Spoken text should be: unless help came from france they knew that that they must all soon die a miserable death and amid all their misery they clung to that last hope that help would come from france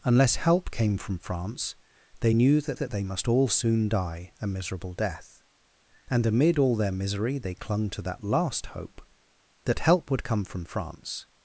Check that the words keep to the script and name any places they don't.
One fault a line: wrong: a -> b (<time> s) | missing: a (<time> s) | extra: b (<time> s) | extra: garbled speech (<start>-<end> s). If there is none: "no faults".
no faults